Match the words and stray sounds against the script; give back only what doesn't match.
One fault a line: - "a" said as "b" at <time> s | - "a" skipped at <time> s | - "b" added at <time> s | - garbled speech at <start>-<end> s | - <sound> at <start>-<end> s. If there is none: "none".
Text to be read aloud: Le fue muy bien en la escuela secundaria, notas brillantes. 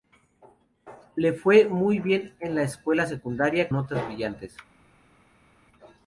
none